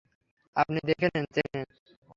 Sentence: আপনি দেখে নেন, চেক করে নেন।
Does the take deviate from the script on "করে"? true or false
true